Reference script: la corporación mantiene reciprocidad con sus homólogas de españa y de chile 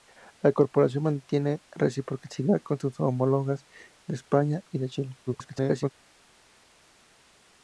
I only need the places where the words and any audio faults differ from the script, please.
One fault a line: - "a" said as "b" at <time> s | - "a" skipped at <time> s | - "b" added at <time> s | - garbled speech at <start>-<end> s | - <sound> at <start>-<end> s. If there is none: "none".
- garbled speech at 5.3-5.9 s